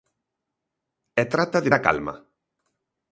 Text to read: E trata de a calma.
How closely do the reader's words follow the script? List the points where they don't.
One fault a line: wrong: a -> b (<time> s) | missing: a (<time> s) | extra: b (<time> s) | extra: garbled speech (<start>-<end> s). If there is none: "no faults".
no faults